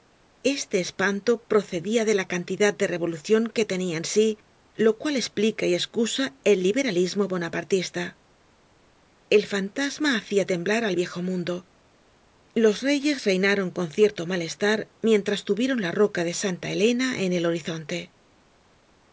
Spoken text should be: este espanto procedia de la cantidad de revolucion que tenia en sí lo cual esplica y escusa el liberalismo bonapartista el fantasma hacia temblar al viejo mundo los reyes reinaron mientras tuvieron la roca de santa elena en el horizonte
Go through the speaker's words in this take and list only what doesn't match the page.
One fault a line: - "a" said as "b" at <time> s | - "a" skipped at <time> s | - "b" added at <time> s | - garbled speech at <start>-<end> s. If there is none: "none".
- "con cierto malestar" added at 13.7 s